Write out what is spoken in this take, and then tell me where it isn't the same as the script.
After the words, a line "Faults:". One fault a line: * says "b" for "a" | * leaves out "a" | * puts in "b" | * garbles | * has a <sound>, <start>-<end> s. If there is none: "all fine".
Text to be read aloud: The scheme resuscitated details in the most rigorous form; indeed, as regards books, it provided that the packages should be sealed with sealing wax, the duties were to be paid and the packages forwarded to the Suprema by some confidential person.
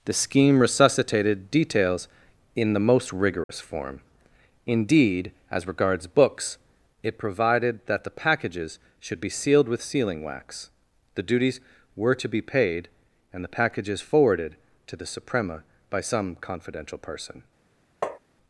The scheme resuscitated details in the most rigorous form; indeed, as regards books, it provided that the packages should be sealed with sealing wax, the duties were to be paid and the packages forwarded to the Suprema by some confidential person.
Faults:
* has a dropout, 3.4-3.5 s
* has a tap, 18.0-18.2 s